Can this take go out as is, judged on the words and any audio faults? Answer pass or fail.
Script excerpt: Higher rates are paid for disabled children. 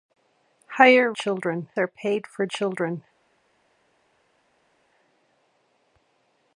fail